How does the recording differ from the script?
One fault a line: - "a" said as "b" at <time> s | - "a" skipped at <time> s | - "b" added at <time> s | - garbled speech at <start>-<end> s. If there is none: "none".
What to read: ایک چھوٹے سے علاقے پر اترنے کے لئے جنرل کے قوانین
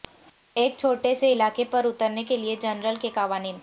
none